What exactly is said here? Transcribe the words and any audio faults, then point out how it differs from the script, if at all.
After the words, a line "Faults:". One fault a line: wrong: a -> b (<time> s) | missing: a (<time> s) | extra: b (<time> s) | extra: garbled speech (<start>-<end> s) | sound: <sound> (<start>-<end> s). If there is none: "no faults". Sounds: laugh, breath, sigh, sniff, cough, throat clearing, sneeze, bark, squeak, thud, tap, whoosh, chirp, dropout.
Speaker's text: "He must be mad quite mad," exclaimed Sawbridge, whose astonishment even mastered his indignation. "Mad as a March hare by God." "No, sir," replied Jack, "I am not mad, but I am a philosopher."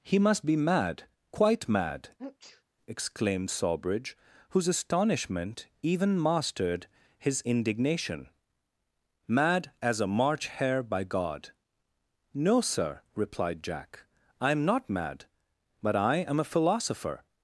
"He must be mad quite mad," exclaimed Sawbridge, whose astonishment even mastered his indignation. "Mad as a March hare by God." "No, sir," replied Jack, "I am not mad, but I am a philosopher."
Faults:
sound: sneeze (2.2-2.6 s)